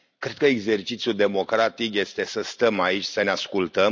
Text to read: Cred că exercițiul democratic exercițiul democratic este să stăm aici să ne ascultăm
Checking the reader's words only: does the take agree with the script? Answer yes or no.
no